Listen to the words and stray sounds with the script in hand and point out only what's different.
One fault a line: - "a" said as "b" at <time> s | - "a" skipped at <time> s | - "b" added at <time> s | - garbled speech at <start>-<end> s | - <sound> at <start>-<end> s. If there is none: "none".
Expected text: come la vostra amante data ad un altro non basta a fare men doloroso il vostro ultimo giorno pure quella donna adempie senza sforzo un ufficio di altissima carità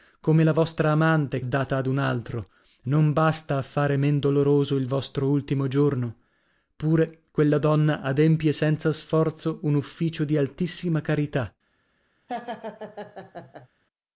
- laugh at 12.3-13.7 s